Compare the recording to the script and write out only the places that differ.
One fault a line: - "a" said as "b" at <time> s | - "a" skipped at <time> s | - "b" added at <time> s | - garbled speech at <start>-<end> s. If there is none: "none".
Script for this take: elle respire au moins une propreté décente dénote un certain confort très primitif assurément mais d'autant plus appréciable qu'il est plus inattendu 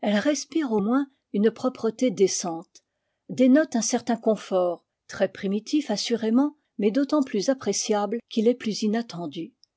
none